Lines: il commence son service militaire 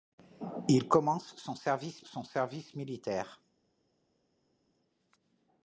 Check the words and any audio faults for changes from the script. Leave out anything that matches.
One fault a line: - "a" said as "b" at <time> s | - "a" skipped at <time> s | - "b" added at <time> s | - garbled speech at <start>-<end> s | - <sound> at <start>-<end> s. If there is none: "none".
- "son service" added at 2.0 s